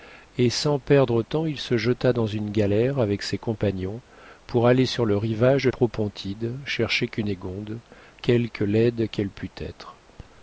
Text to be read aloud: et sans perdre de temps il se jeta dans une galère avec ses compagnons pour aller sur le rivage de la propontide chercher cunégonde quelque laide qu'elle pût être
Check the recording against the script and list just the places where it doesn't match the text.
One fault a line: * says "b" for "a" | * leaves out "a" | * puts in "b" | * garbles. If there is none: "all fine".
* leaves out "de"
* leaves out "la"